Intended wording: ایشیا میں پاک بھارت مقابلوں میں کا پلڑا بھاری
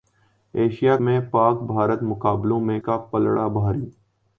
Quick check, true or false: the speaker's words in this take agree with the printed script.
true